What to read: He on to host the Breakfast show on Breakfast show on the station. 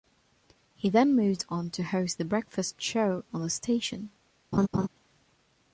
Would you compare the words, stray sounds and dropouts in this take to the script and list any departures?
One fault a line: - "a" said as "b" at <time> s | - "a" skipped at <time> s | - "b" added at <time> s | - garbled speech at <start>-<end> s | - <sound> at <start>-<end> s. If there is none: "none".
- "then moved" added at 0.9 s
- "Breakfast show on" skipped at 3.4 s
- laugh at 4.5-4.9 s